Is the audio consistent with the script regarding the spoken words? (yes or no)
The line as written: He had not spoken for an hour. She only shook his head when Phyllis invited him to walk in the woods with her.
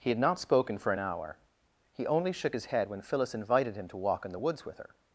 no